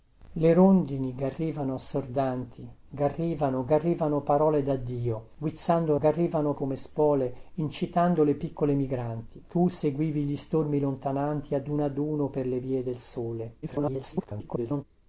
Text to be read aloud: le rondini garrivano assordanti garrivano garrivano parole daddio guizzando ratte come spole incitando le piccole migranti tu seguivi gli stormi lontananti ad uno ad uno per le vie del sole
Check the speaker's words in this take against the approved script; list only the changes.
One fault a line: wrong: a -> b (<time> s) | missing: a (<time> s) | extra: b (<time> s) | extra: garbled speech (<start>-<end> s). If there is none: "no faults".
wrong: ratte -> garrivano (6.0 s)
extra: garbled speech (13.6-14.8 s)